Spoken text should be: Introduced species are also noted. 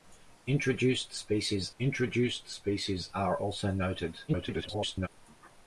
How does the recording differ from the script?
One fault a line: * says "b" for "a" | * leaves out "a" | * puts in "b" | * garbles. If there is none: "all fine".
* puts in "introduced species"
* garbles